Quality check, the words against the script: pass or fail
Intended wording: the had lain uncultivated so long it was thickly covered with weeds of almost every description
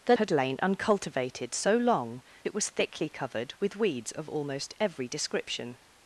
pass